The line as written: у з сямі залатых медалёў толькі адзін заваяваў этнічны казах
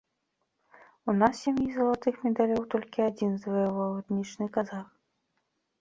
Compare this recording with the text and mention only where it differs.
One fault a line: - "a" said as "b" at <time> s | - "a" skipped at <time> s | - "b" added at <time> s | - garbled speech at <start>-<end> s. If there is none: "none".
- "нас" added at 1.2 s